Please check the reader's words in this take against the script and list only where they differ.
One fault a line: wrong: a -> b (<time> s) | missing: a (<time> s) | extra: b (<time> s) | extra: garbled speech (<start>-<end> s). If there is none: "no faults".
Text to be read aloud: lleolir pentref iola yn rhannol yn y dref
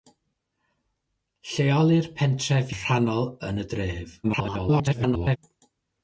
missing: iola yn (2.7 s)
extra: garbled speech (4.2-5.4 s)